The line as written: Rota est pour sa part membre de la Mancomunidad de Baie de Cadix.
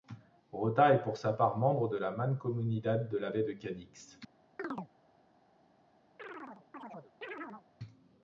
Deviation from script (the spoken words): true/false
true